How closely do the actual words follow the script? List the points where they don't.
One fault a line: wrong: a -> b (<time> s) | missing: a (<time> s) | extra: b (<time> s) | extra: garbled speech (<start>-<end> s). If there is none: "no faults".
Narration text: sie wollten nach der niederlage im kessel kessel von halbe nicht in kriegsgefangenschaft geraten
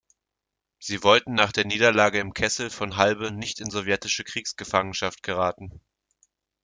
missing: kessel (2.7 s)
extra: sowjetische (3.7 s)